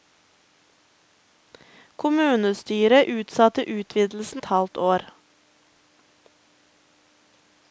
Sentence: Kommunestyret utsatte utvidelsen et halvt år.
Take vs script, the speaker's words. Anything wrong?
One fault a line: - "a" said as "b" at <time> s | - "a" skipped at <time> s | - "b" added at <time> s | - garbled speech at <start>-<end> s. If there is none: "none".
none